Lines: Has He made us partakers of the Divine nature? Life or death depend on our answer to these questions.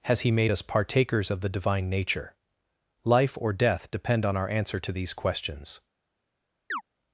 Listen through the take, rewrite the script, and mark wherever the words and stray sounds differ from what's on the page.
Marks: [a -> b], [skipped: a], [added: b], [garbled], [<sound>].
Has He made us partakers of the Divine nature? Life or death depend on our answer to these questions. [chirp]